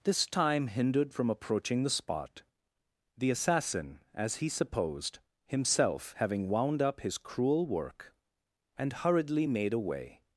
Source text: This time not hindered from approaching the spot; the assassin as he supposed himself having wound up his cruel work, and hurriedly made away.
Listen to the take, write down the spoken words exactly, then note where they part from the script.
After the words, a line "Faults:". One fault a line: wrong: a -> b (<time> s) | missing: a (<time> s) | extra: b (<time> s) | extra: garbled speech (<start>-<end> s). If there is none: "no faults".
This time hindered from approaching the spot; the assassin as he supposed himself having wound up his cruel work, and hurriedly made away.
Faults:
missing: not (0.7 s)